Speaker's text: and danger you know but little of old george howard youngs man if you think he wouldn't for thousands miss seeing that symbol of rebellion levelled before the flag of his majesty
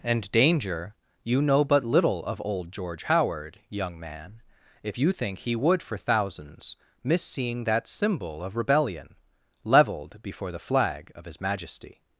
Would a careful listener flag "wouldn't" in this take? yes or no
yes